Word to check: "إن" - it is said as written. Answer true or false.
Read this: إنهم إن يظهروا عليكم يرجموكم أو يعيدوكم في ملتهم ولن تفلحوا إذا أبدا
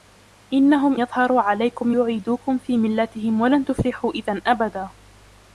false